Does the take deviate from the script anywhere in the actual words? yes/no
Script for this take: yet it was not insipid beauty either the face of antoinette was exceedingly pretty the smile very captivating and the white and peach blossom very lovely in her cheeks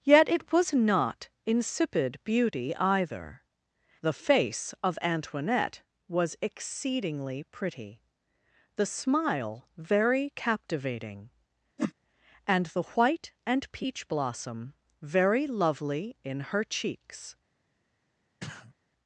no